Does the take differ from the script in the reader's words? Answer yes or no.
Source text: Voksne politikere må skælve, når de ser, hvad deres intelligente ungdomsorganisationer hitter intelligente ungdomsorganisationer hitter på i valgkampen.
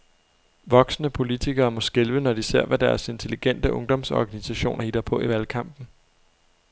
yes